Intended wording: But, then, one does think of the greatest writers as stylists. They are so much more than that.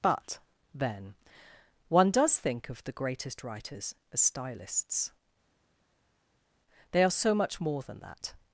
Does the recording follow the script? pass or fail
pass